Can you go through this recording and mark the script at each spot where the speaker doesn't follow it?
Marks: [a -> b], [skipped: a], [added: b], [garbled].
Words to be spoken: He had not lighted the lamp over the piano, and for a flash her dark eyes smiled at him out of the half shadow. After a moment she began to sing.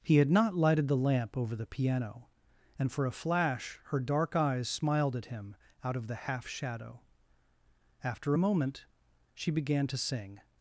He had not lighted the lamp over the piano, and for a flash her dark eyes smiled at him out of the half shadow. After a moment she began to sing.